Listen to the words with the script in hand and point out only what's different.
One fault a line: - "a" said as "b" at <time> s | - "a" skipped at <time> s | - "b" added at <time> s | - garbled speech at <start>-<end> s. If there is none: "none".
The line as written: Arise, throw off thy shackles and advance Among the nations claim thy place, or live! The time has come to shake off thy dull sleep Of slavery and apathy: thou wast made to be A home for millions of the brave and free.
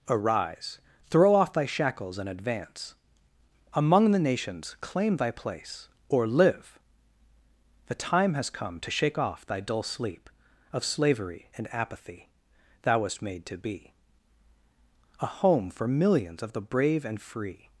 none